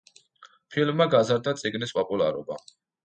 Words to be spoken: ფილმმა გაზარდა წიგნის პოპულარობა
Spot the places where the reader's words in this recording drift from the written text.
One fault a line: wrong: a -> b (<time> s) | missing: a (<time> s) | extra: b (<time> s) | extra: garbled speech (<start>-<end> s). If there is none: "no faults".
no faults